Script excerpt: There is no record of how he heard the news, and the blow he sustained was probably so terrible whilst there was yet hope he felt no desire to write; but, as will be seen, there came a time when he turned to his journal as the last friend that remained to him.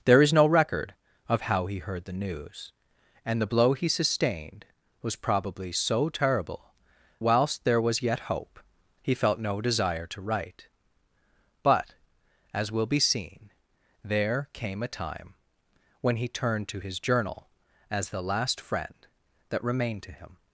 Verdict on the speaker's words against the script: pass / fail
pass